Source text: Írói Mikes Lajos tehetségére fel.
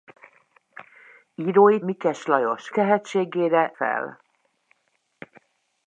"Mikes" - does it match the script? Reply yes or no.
yes